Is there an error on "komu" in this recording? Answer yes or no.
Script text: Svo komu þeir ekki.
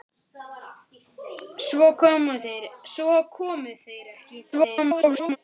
no